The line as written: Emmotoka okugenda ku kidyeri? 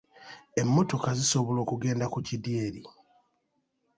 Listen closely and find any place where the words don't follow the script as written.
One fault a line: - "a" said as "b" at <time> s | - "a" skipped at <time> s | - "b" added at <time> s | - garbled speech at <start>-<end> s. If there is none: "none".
- "zisobola" added at 1.2 s